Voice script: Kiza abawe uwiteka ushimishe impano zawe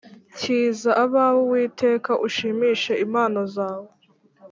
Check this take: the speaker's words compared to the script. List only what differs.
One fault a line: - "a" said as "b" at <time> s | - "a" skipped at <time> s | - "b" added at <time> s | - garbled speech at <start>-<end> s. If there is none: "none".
none